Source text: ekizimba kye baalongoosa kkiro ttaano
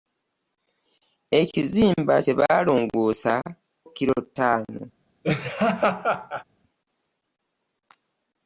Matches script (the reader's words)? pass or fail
pass